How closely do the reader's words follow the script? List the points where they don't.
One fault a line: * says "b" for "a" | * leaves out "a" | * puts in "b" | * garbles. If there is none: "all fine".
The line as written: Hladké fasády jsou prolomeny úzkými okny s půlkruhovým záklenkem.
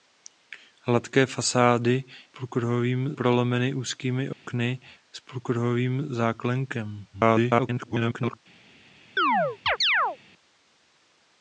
* says "půlkruhovým" for "jsou"
* garbles